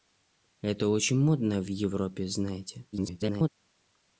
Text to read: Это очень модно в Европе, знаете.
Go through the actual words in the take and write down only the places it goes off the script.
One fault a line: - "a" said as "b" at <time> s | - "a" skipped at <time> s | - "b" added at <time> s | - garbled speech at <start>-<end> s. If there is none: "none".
- garbled speech at 2.9-3.5 s